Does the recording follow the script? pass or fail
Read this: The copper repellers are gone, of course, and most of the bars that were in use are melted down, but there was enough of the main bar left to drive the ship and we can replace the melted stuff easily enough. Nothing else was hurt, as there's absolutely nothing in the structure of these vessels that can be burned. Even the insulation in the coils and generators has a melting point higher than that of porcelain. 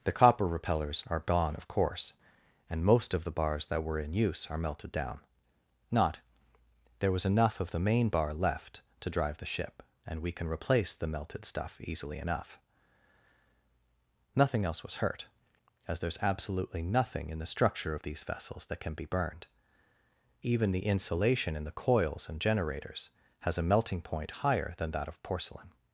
fail